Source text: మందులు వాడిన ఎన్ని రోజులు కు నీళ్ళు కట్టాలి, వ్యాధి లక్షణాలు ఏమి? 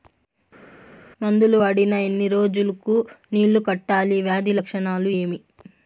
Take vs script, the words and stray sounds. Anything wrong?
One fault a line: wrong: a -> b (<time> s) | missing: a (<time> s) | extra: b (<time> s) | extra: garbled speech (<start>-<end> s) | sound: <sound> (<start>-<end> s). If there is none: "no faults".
no faults